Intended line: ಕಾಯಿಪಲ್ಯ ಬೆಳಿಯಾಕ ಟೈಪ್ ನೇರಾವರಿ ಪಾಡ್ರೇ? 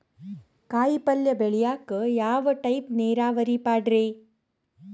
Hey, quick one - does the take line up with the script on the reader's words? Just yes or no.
no